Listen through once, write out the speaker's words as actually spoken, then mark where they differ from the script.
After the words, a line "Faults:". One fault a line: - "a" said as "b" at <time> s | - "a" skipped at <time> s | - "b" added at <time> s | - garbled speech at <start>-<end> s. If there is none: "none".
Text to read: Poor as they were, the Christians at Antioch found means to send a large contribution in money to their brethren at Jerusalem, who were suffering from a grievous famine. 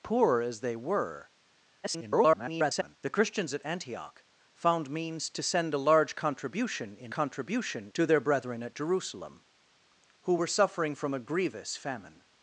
Poor as they were, [garbled] the Christians at Antioch found means to send a large contribution in contribution to their brethren at Jerusalem, who were suffering from a grievous famine.
Faults:
- garbled speech at 1.8-3.0 s
- "money" said as "contribution" at 7.1 s